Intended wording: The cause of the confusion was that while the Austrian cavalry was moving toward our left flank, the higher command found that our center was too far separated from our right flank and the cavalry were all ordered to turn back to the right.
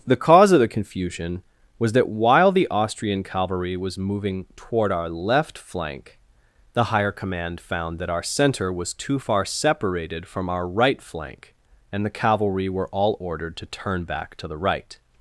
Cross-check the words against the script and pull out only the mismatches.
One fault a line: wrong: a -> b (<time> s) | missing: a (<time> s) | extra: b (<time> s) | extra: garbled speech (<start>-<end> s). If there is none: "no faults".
no faults